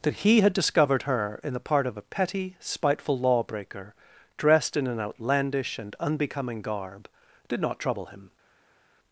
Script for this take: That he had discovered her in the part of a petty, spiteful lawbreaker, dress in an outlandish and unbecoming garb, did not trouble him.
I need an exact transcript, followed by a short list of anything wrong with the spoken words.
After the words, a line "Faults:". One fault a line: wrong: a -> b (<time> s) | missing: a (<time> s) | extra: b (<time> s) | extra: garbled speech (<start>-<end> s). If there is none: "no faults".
That he had discovered her in the part of a petty, spiteful lawbreaker, dressed in an outlandish and unbecoming garb, did not trouble him.
Faults:
wrong: dress -> dressed (4.4 s)